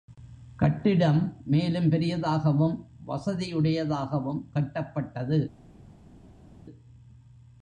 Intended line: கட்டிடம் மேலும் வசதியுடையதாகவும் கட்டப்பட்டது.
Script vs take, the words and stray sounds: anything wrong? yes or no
yes